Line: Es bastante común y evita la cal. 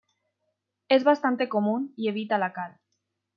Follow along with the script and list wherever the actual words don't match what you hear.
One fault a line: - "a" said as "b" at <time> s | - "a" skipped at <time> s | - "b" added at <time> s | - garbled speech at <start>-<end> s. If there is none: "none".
none